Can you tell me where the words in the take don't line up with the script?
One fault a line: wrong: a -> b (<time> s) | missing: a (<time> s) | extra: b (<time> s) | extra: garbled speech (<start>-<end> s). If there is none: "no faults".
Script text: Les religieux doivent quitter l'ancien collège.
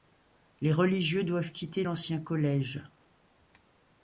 no faults